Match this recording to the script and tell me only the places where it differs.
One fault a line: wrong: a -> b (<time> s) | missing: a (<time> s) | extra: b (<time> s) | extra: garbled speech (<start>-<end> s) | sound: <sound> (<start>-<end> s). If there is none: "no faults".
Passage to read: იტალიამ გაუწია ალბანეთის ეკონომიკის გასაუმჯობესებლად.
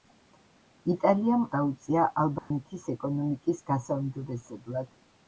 sound: dropout (2.4-2.5 s)